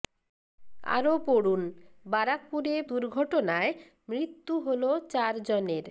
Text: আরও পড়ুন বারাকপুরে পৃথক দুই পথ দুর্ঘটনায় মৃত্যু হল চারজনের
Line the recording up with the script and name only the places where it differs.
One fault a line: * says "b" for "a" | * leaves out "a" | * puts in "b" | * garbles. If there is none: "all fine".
* leaves out "পৃথক দুই পথ"